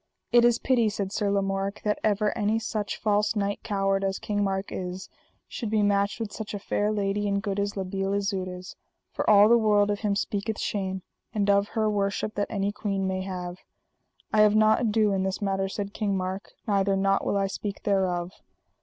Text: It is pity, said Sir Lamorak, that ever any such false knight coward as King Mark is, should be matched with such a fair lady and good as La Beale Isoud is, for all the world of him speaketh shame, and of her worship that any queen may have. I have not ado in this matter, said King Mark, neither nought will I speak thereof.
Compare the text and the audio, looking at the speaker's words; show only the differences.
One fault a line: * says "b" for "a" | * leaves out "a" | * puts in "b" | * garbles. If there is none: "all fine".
all fine